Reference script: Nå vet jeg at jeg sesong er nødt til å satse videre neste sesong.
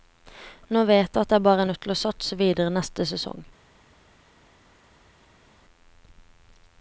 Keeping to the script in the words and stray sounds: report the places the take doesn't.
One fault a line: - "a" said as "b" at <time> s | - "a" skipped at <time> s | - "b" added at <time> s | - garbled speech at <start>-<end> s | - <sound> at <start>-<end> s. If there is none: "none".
- "sesong" said as "bare" at 1.5 s